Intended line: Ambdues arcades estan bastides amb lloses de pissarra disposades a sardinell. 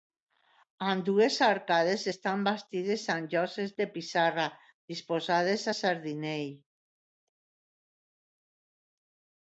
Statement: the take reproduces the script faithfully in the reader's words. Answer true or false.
true